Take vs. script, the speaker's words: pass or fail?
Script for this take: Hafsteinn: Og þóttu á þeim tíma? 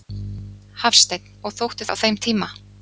pass